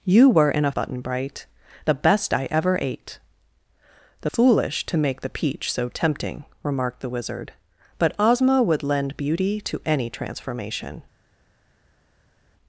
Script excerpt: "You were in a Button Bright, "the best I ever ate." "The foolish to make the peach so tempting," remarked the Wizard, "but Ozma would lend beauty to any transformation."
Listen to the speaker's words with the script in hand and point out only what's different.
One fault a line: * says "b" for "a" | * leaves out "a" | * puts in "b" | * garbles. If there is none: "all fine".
all fine